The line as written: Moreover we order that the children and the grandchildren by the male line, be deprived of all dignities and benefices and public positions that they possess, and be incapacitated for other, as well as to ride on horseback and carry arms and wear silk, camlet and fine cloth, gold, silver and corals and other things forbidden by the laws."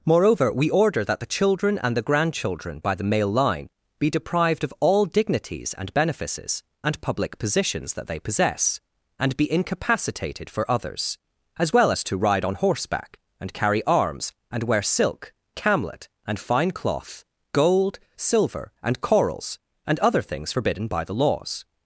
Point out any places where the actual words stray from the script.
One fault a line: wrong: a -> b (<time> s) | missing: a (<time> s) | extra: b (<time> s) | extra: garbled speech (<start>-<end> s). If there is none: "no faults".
wrong: other -> others (10.7 s)